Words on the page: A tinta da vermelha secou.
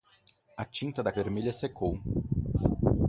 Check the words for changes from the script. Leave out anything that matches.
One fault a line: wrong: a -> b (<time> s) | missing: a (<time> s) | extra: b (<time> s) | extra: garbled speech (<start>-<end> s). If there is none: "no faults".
no faults